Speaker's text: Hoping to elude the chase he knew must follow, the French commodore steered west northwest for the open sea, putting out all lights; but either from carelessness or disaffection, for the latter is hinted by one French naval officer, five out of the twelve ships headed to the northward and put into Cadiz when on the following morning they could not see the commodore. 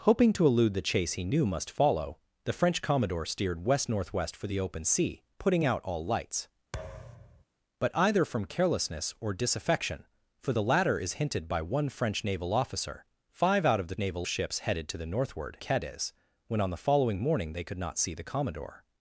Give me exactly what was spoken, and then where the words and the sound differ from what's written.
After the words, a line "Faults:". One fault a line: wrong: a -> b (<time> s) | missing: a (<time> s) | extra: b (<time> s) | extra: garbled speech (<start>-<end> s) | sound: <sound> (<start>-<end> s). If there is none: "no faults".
Hoping to elude the chase he knew must follow, the French commodore steered west northwest for the open sea, putting out all lights; but either from carelessness or disaffection, for the latter is hinted by one French naval officer, five out of the naval ships headed to the northward Cadiz when on the following morning they could not see the commodore.
Faults:
sound: thud (6.7-7.4 s)
wrong: twelve -> naval (14.0 s)
missing: and put into (15.6 s)